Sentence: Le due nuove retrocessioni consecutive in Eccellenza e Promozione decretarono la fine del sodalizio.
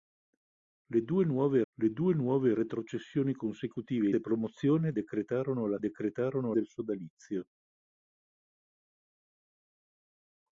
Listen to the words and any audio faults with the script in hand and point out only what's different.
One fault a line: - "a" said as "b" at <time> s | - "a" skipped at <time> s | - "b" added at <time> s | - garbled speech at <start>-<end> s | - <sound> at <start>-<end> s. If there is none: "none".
- "le due nuove" added at 1.7 s
- "in Eccellenza" skipped at 4.1 s
- "fine" said as "decretarono" at 5.8 s